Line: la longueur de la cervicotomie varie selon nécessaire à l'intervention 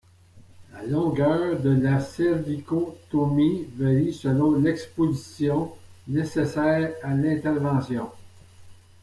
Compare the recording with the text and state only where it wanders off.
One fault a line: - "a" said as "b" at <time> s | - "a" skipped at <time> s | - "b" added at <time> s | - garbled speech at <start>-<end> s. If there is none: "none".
- "l'exposition" added at 4.5 s